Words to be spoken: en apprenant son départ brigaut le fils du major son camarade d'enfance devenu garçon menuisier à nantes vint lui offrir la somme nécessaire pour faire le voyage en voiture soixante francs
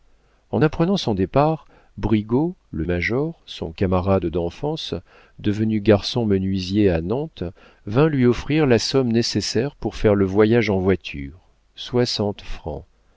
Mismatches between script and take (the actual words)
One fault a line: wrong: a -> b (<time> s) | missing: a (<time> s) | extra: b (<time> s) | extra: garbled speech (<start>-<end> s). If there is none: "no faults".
missing: fils du (2.9 s)